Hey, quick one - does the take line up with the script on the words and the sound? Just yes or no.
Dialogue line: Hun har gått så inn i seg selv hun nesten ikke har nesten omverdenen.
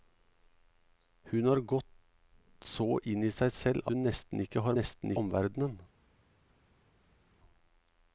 yes